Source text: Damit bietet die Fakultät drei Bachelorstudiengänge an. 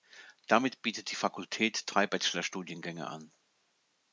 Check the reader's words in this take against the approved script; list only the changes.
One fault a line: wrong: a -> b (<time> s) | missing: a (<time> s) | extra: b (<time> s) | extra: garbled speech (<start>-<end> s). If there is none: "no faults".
no faults